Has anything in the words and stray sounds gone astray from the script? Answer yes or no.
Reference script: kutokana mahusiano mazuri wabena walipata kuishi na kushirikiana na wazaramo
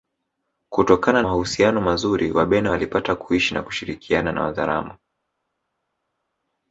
no